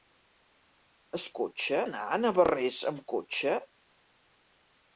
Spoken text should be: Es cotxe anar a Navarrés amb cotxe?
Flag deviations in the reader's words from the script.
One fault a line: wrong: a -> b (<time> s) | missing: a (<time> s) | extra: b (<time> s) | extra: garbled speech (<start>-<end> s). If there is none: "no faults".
no faults